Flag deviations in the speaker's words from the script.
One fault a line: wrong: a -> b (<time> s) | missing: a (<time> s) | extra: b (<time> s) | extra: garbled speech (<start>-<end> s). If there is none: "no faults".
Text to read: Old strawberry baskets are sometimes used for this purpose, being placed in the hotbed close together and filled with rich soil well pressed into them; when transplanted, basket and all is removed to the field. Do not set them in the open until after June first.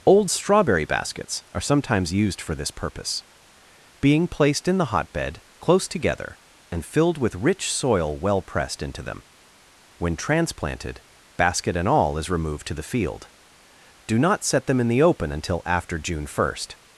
no faults